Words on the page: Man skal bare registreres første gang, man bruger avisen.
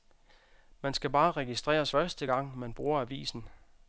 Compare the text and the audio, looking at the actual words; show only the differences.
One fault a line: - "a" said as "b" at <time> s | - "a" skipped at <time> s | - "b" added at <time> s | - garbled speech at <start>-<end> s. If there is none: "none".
none